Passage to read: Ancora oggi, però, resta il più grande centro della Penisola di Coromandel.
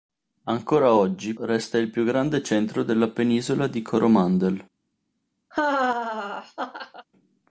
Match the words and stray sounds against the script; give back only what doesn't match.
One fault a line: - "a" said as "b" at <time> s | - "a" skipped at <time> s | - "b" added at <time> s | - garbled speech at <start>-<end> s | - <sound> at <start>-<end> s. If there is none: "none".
- "però" skipped at 1.3 s
- laugh at 5.5-7.1 s